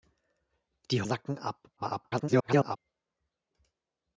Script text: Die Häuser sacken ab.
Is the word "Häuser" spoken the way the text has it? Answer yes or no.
no